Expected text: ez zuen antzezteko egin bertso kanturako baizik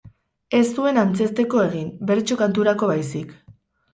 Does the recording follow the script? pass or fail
pass